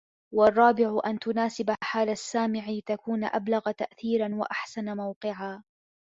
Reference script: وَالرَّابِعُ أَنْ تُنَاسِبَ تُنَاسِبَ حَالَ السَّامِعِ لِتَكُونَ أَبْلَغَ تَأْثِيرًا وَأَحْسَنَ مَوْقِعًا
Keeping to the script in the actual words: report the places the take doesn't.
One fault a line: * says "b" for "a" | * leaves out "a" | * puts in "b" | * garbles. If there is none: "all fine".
* leaves out "تُنَاسِبَ"